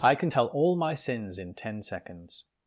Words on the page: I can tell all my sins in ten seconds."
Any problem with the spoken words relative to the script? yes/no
no